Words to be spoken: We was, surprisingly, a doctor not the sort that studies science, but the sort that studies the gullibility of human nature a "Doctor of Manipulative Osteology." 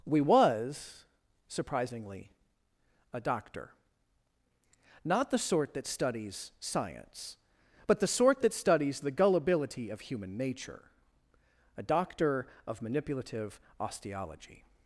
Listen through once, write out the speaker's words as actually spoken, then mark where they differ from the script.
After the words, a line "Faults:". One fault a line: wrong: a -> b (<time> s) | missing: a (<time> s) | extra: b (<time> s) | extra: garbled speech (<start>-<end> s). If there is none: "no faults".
We was, surprisingly, a doctor not the sort that studies science, but the sort that studies the gullibility of human nature a "Doctor of Manipulative Osteology."
Faults:
no faults